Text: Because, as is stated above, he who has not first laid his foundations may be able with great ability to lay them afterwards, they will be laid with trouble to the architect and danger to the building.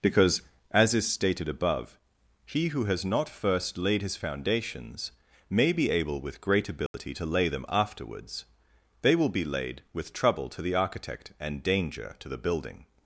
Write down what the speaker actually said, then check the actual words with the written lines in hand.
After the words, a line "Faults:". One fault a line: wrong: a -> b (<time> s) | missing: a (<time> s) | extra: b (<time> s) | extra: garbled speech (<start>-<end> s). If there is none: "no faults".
Because, as is stated above, he who has not first laid his foundations may be able with great ability to lay them afterwards, they will be laid with trouble to the architect and danger to the building.
Faults:
no faults